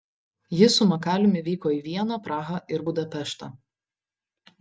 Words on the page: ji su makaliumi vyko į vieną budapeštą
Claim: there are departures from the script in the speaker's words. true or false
true